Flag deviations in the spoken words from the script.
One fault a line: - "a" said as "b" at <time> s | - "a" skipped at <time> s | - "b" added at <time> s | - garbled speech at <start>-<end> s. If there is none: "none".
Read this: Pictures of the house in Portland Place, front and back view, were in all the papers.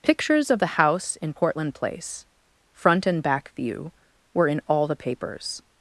none